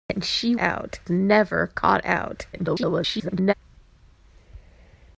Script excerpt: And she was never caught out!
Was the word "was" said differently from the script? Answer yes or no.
yes